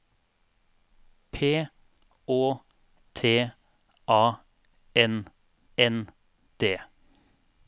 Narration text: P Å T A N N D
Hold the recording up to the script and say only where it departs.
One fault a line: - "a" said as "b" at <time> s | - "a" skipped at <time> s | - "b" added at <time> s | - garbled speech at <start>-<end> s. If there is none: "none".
none